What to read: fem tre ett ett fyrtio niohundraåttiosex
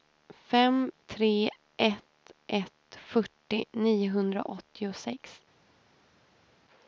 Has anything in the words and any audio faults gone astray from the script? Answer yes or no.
no